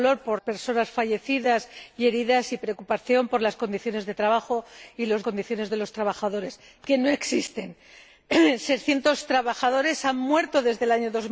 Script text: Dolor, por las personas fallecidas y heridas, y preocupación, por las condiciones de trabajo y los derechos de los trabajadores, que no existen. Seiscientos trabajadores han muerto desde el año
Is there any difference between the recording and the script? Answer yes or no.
yes